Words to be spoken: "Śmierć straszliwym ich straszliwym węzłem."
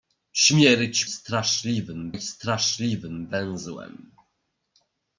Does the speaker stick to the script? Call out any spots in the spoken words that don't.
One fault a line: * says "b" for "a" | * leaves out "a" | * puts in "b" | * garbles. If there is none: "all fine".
all fine